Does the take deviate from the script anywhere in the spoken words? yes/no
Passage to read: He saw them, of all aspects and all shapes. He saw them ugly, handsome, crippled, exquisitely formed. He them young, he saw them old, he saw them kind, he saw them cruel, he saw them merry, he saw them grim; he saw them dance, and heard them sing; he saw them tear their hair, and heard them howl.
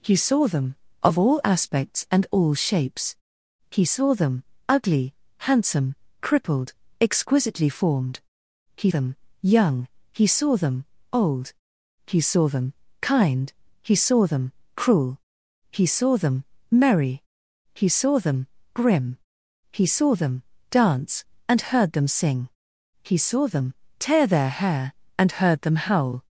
no